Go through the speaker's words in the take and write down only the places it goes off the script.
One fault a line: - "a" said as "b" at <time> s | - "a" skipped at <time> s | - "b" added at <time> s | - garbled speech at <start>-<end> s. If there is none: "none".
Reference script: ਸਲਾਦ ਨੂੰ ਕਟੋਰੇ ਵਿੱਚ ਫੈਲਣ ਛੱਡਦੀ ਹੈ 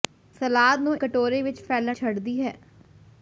none